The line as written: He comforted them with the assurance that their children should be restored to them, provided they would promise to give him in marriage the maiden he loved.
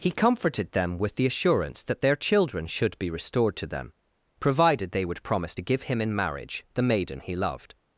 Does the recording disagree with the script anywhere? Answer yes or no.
no